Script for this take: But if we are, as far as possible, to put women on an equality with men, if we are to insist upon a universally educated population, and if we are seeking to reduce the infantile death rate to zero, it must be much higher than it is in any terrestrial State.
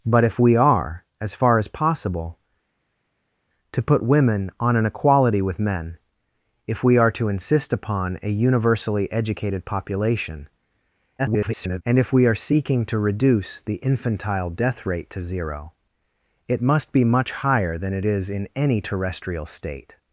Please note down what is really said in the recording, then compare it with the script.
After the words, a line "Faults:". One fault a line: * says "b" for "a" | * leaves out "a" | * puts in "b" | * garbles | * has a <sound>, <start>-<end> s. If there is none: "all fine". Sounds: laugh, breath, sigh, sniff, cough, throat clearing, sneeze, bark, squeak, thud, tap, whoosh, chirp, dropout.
But if we are, as far as possible, to put women on an equality with men, if we are to insist upon a universally educated population, [garbled] and if we are seeking to reduce the infantile death rate to zero, it must be much higher than it is in any terrestrial State.
Faults:
* garbles